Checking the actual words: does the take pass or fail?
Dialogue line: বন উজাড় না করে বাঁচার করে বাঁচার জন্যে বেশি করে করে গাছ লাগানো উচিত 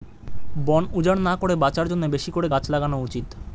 fail